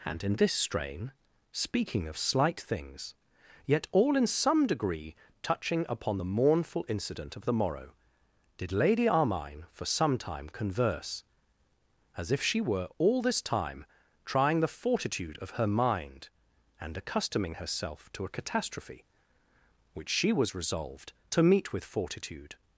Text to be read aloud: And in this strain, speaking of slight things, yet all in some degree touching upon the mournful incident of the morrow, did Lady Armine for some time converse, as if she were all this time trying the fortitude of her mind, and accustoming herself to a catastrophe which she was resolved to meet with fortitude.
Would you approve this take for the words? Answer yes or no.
yes